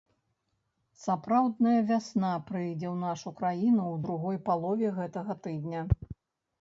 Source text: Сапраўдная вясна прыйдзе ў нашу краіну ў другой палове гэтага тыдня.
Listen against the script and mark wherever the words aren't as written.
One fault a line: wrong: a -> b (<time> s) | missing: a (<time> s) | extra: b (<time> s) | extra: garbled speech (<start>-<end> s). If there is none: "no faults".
no faults